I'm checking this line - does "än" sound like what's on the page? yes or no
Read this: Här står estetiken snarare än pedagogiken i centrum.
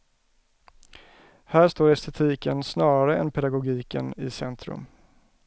yes